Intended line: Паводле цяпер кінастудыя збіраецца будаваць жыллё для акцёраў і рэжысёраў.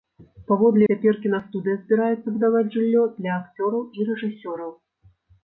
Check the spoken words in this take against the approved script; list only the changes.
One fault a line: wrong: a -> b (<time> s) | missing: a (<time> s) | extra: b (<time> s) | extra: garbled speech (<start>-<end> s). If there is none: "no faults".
no faults